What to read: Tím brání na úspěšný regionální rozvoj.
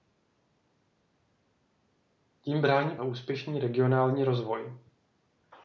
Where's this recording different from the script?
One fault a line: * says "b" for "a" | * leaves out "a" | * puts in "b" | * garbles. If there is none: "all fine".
all fine